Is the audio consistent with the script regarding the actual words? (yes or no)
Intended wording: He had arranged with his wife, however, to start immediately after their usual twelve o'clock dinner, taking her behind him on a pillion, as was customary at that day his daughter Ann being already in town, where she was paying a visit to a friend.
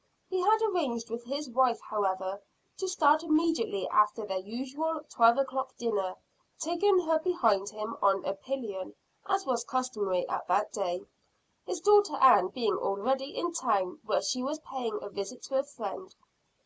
yes